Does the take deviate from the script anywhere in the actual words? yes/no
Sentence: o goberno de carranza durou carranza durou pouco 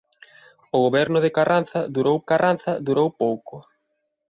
no